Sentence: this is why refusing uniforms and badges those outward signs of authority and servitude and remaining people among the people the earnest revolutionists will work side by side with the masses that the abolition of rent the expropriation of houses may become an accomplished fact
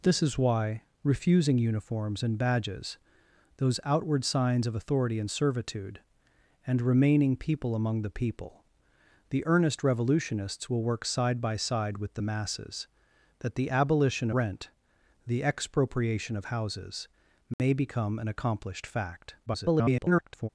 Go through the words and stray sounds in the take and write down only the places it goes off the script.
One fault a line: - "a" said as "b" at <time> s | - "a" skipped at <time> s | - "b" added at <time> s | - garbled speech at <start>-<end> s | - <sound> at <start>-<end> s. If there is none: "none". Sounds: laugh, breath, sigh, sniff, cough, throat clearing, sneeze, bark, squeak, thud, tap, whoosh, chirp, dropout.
- "of" skipped at 14.3 s
- dropout at 17.5-17.6 s
- garbled speech at 19.5-20.5 s